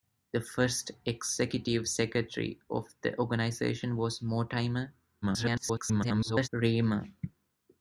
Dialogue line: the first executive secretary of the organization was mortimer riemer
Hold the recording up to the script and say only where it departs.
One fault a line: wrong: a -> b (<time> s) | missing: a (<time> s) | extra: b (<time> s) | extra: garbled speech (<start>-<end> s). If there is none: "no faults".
extra: garbled speech (5.2-6.5 s)